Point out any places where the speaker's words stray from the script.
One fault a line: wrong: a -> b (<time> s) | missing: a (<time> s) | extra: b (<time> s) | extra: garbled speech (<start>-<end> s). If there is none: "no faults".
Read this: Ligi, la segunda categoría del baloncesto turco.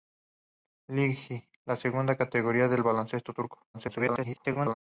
extra: garbled speech (3.7-4.7 s)